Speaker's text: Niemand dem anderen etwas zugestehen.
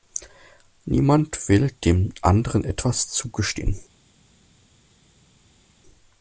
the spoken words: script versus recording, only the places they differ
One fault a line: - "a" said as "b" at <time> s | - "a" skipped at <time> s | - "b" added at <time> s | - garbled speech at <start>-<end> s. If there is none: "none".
- "will" added at 1.5 s